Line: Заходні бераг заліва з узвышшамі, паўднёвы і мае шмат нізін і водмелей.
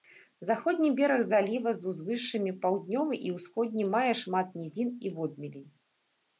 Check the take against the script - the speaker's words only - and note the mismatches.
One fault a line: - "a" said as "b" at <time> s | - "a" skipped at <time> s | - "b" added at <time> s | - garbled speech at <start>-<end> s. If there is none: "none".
- "ўсходні" added at 3.4 s